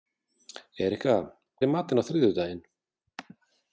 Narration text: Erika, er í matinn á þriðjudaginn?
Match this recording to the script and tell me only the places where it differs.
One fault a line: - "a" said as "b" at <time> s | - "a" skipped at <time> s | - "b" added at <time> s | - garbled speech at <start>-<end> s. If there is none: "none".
none